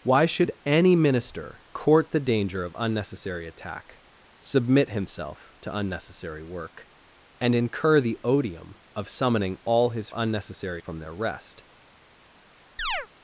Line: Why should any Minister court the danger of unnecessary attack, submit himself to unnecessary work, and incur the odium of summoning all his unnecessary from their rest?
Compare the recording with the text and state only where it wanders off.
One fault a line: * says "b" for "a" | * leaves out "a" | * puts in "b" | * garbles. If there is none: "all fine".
all fine